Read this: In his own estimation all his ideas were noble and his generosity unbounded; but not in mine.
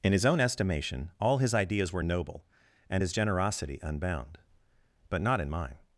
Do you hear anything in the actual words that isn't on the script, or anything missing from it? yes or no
yes